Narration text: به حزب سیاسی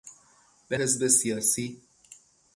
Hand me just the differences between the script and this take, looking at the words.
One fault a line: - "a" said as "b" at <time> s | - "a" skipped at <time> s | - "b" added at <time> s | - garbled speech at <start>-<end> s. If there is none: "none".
none